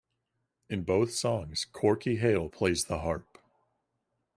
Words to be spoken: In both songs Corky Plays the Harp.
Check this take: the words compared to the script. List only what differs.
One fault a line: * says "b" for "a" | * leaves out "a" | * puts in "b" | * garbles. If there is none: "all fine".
* puts in "Hale"